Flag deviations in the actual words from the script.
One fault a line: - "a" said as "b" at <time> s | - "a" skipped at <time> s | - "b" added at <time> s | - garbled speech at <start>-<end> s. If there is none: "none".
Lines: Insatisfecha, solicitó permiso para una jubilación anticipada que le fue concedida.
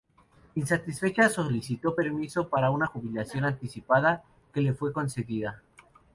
none